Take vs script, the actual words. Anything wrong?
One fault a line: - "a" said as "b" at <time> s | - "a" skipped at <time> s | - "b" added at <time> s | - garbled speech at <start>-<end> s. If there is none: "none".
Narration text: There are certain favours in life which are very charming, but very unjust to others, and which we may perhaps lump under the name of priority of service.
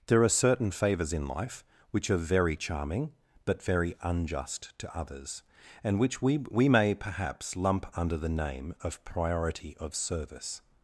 - "we" added at 6.4 s